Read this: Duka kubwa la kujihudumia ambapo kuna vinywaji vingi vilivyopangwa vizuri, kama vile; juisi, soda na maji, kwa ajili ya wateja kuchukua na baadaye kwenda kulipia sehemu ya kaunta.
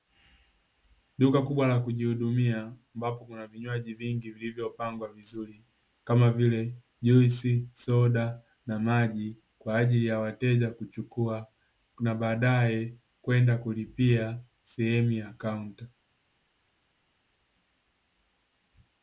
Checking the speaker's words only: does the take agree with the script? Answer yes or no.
yes